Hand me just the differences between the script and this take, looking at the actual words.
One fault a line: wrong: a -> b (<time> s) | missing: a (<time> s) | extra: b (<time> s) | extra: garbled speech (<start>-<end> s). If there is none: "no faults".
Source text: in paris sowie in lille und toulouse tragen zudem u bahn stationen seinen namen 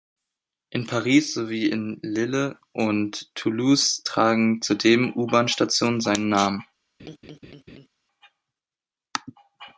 no faults